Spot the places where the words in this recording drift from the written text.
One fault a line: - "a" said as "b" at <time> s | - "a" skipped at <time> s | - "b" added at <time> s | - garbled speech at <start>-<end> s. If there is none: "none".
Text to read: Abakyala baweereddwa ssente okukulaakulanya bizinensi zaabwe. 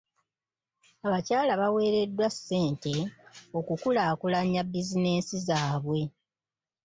none